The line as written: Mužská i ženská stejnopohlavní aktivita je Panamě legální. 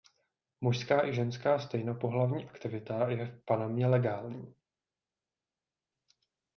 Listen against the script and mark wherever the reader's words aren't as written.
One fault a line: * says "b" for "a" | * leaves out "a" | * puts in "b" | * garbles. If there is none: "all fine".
* puts in "v"